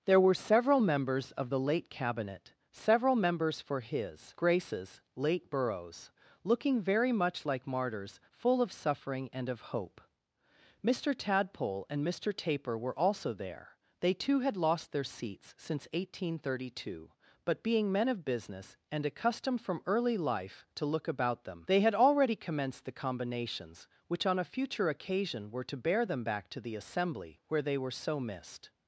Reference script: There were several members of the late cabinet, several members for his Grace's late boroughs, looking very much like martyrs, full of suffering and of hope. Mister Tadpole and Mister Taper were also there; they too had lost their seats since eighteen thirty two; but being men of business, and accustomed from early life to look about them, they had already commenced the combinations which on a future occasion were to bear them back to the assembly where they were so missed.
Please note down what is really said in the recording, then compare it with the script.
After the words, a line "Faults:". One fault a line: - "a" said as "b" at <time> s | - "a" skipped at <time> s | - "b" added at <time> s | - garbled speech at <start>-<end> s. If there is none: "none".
There were several members of the late cabinet, several members for his Grace's late boroughs, looking very much like martyrs, full of suffering and of hope. Mister Tadpole and Mister Taper were also there; they too had lost their seats since eighteen thirty two; but being men of business, and accustomed from early life to look about them, they had already commenced the combinations which on a future occasion were to bear them back to the assembly where they were so missed.
Faults:
none